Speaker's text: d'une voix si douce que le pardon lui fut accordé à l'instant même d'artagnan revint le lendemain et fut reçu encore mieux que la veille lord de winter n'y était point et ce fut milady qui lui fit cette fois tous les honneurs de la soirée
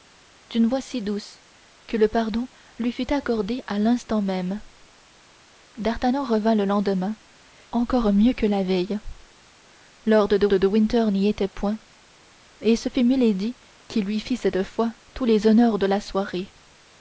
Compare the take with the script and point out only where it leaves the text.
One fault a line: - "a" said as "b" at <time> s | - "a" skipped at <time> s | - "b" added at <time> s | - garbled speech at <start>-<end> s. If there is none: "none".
- "et fut reçu" skipped at 7.2 s
- "de" added at 10.5 s